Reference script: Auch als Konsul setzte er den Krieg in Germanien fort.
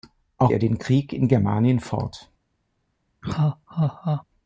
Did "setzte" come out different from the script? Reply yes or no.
yes